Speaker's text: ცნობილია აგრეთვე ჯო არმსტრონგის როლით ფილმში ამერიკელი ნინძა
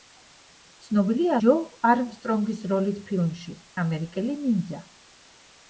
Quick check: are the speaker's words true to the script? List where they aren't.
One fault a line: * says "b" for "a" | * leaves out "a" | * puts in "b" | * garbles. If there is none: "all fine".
* leaves out "აგრეთვე"